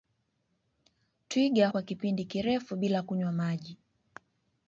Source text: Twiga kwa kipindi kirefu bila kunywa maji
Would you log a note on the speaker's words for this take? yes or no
no